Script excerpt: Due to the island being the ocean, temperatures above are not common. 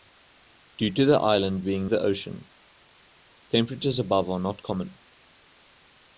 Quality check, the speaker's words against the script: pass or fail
pass